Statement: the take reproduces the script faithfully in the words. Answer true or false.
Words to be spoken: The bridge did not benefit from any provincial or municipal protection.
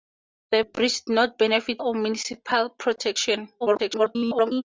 false